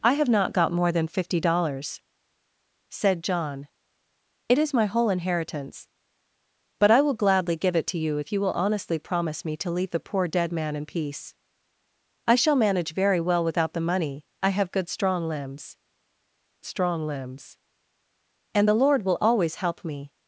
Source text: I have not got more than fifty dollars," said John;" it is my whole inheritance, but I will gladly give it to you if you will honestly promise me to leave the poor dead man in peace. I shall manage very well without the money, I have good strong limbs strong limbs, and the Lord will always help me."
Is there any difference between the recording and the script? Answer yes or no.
no